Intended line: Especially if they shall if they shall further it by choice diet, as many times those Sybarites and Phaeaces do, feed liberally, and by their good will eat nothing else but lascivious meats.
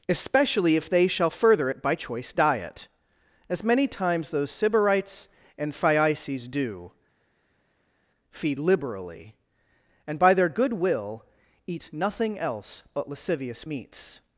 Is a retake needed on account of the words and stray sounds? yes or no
yes